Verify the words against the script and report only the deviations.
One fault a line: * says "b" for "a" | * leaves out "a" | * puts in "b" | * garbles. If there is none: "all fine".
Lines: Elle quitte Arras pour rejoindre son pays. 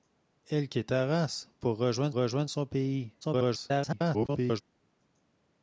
* puts in "rejoindre"
* garbles